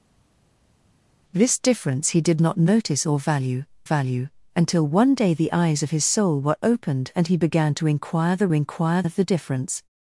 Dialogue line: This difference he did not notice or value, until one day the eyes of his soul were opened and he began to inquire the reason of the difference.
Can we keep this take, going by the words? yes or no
no